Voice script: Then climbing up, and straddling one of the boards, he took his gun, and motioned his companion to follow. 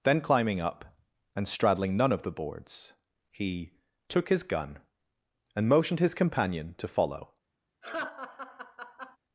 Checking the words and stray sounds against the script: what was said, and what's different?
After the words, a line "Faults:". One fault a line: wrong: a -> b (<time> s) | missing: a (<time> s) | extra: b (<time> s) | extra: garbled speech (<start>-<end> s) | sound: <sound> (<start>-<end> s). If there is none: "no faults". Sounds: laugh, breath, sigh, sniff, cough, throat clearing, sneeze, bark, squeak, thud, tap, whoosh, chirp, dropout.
Then climbing up, and straddling none of the boards, he took his gun, and motioned his companion to follow.
Faults:
wrong: one -> none (1.9 s)
sound: laugh (7.8-9.2 s)